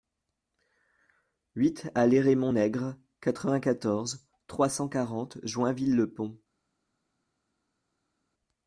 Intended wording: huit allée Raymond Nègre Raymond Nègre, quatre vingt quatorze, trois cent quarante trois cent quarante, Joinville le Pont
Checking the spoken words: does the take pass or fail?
fail